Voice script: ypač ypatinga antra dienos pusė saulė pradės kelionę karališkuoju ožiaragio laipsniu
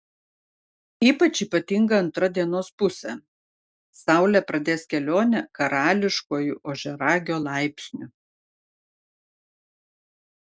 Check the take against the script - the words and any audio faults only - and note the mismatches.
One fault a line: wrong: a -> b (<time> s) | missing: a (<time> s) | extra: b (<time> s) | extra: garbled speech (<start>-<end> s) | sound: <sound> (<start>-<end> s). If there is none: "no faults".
no faults